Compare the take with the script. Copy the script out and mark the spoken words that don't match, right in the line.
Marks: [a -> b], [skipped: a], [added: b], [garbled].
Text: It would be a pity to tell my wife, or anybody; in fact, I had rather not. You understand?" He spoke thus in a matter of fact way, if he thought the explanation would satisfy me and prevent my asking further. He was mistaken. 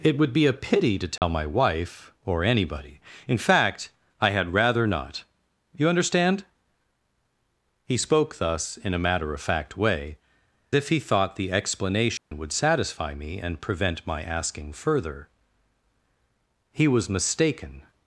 It would be a pity to tell my wife, or anybody; in fact, I had rather not. You understand?" He spoke thus in a matter of fact way, if he thought the explanation would satisfy me and prevent my asking further. He was mistaken.